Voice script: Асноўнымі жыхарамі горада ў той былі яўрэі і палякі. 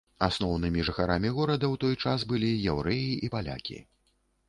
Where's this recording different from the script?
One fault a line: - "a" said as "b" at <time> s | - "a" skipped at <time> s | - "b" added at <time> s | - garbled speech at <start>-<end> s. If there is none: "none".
- "час" added at 2.0 s